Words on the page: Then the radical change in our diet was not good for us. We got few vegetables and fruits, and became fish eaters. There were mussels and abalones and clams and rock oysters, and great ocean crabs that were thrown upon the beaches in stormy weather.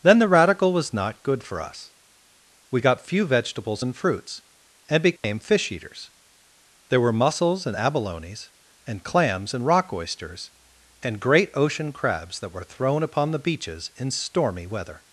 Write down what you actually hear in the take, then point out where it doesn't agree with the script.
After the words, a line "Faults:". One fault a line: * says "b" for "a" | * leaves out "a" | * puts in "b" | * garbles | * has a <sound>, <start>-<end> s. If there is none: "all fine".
Then the radical was not good for us. We got few vegetables and fruits, and became fish eaters. There were mussels and abalones and clams and rock oysters, and great ocean crabs that were thrown upon the beaches in stormy weather.
Faults:
* leaves out "change in our diet"
* has a dropout, 5.2-5.2 s